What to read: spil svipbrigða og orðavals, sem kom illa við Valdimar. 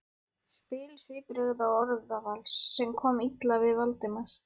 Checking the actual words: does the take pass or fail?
pass